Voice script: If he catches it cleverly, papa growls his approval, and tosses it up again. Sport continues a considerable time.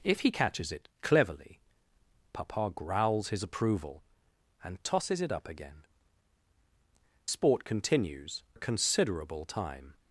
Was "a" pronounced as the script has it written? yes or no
yes